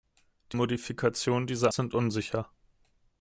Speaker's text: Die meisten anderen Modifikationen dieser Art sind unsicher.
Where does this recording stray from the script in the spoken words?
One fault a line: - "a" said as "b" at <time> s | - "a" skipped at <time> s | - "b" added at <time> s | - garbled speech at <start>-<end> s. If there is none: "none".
- "meisten anderen" skipped at 0.6 s
- "Art" skipped at 1.7 s